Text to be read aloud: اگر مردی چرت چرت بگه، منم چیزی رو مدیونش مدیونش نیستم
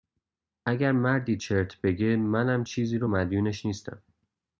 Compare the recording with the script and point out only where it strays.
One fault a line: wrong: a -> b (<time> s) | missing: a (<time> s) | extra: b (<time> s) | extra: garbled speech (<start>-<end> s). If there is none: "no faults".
missing: چرت (1.8 s)
missing: مدیونش (3.7 s)